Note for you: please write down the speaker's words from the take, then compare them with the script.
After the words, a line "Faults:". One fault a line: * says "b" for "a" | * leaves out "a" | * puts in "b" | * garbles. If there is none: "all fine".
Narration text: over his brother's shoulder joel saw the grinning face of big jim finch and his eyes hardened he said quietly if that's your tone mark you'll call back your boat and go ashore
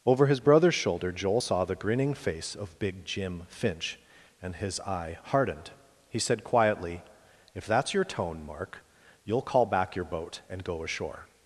over his brother's shoulder joel saw the grinning face of big jim finch and his eye hardened he said quietly if that's your tone mark you'll call back your boat and go ashore
Faults:
* says "eye" for "eyes"